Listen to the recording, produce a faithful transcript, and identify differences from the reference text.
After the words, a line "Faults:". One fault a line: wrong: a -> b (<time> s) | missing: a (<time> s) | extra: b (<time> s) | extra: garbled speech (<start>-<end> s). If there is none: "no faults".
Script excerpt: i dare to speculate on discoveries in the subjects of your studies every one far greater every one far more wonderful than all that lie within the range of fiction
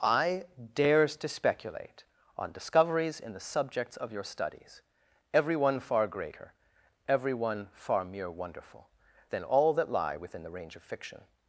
i dares to speculate on discoveries in the subjects of your studies every one far greater every one far mere wonderful than all that lie within the range of fiction
Faults:
wrong: dare -> dares (0.7 s)
wrong: more -> mere (8.0 s)